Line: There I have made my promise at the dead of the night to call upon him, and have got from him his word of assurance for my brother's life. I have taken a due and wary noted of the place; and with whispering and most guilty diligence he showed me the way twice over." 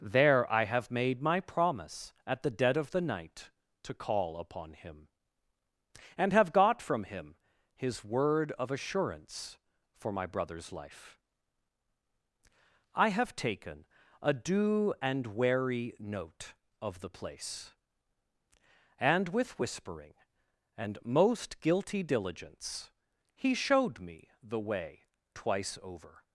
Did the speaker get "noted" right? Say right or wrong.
wrong